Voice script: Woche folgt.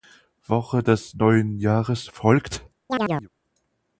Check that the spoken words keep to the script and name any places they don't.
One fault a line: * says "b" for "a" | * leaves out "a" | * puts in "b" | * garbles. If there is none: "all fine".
* puts in "des neuen Jahres"